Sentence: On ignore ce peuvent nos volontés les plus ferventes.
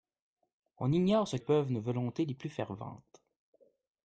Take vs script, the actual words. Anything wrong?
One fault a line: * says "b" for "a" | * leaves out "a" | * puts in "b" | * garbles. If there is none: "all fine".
all fine